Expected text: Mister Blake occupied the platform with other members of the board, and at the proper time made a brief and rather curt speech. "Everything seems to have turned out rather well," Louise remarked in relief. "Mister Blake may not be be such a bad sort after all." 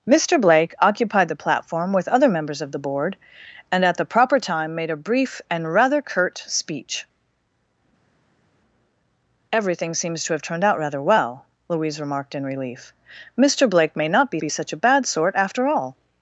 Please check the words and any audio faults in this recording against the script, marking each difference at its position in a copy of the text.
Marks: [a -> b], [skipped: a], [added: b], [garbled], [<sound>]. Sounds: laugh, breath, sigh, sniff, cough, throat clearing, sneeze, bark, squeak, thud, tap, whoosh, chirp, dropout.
Mister Blake occupied the platform with other members of the board, and at the proper time made a brief and rather curt speech. "Everything seems to have turned out rather well," Louise remarked in relief. "Mister Blake may not be be such a bad sort after all."